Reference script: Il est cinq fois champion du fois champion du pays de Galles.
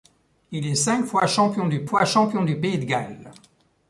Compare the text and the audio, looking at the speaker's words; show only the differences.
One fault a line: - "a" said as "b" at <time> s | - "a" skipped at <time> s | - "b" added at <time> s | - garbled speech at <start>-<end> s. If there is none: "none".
none